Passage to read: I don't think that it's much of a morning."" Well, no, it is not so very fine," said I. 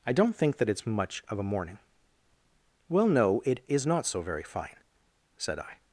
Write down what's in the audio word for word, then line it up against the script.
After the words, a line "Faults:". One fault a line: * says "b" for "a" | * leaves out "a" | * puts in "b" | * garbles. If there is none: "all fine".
I don't think that it's much of a morning."" Well, no, it is not so very fine," said I.
Faults:
all fine